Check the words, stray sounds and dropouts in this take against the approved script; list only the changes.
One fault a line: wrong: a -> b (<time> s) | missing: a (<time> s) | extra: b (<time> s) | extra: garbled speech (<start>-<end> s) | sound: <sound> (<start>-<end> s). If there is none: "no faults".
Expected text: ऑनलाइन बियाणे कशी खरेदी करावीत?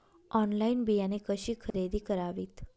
sound: dropout (1.7-1.7 s)